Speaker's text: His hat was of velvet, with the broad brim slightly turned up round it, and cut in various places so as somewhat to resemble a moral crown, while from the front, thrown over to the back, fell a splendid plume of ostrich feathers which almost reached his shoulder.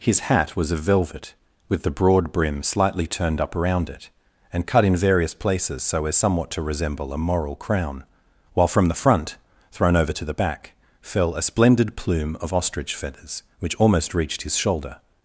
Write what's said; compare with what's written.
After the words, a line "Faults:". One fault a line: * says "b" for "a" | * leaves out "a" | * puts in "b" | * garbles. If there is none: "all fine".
His hat was of velvet, with the broad brim slightly turned up around it, and cut in various places so as somewhat to resemble a moral crown, while from the front, thrown over to the back, fell a splendid plume of ostrich feathers which almost reached his shoulder.
Faults:
* says "around" for "round"